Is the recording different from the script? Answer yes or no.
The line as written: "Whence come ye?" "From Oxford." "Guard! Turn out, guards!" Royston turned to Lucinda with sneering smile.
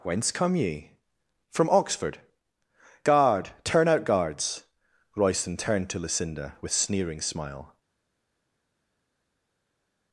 no